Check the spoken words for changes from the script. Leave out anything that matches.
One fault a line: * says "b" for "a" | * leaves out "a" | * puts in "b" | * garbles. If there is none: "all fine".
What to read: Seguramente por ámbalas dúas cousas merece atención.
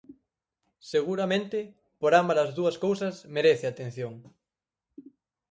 all fine